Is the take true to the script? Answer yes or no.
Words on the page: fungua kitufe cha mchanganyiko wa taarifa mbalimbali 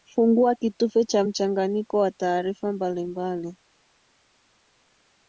yes